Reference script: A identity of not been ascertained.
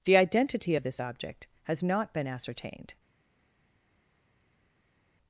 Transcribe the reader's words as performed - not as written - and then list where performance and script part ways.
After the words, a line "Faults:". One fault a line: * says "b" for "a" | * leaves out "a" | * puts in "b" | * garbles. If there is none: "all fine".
The identity of this object has not been ascertained.
Faults:
* says "The" for "A"
* puts in "this object has"